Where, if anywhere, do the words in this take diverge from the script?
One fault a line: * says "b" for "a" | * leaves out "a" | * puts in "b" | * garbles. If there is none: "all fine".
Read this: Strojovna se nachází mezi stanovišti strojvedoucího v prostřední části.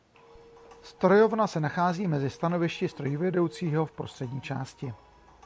all fine